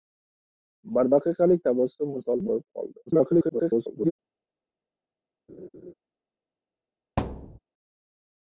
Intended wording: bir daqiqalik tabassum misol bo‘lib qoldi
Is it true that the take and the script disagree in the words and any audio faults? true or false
true